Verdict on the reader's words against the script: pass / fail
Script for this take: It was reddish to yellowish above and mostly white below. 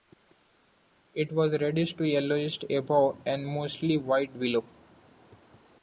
pass